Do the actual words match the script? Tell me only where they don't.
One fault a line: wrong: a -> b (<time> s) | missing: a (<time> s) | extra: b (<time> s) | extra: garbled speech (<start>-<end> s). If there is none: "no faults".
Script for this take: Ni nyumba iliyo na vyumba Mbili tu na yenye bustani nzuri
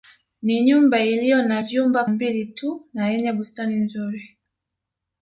no faults